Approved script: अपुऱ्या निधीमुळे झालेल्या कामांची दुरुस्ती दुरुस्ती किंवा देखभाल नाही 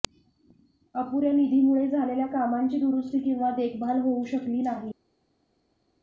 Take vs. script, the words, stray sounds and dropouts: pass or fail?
fail